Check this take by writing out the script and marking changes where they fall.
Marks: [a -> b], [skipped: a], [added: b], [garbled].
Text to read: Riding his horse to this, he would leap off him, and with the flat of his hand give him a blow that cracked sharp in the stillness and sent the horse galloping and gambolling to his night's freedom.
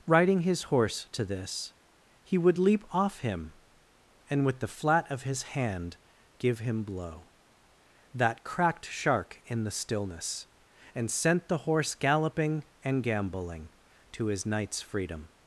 Riding his horse to this, he would leap off him, and with the flat of his hand give him [skipped: a] blow that cracked [sharp -> shark] in the stillness and sent the horse galloping and gambolling to his night's freedom.